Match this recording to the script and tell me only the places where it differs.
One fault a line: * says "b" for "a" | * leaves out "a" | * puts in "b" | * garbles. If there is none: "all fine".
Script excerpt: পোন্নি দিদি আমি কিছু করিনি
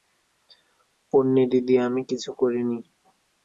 all fine